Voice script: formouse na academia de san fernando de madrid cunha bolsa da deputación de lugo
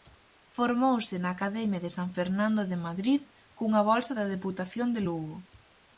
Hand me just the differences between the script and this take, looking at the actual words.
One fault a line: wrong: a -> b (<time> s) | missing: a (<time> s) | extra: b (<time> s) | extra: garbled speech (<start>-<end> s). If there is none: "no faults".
no faults